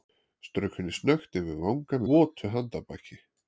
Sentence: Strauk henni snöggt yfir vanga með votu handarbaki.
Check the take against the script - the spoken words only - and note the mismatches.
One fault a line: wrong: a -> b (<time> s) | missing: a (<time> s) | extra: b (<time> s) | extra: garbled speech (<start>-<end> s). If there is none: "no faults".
missing: með (2.0 s)